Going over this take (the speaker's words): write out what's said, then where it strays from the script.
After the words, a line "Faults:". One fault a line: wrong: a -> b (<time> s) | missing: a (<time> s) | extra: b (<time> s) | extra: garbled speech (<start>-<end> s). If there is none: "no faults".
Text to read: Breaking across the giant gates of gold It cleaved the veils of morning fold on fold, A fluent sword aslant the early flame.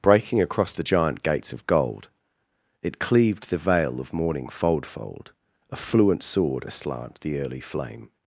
Breaking across the giant gates of gold It cleaved the veil of morning fold fold, A fluent sword aslant the early flame.
Faults:
wrong: veils -> veil (3.6 s)
missing: on (4.9 s)